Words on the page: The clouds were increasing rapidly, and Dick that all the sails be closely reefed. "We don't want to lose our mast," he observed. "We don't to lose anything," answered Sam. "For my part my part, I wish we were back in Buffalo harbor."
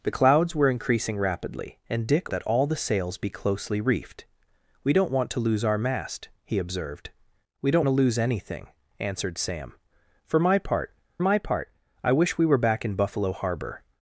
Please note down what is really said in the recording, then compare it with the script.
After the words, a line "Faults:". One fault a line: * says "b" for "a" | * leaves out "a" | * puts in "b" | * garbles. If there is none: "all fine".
The clouds were increasing rapidly, and Dick that all the sails be closely reefed. "We don't want to lose our mast," he observed. "We don't to lose anything," answered Sam. "For my part my part, I wish we were back in Buffalo harbor."
Faults:
all fine